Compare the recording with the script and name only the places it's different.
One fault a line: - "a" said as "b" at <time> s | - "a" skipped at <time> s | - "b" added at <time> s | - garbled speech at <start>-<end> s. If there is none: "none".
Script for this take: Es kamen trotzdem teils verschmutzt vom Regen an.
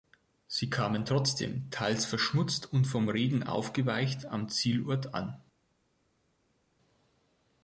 - "Es" said as "Sie" at 0.5 s
- "und" added at 2.7 s
- "aufgeweicht am Zielort" added at 3.4 s